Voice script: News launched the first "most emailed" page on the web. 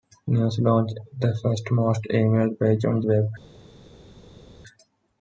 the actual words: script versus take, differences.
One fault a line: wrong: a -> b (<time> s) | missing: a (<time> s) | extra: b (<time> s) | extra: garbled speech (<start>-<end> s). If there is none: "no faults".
no faults